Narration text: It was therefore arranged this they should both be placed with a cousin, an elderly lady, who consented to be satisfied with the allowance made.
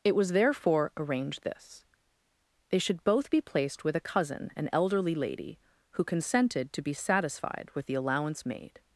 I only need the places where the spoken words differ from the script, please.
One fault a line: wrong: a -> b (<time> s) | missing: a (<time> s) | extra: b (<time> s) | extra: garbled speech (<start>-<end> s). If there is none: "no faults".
no faults